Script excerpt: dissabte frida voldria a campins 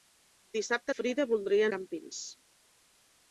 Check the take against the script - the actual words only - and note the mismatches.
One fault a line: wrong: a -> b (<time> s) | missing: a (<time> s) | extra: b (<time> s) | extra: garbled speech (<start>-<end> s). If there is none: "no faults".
no faults